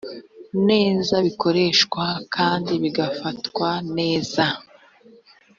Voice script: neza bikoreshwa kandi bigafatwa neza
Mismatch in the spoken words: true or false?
false